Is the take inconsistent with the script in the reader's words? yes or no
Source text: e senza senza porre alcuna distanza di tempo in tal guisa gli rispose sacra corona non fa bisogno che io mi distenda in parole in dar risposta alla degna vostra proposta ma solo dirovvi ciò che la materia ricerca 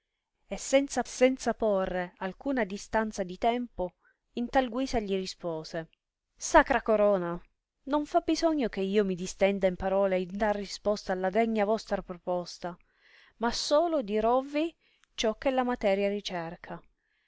no